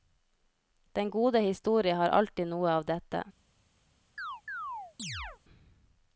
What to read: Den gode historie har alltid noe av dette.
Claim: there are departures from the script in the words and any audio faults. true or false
true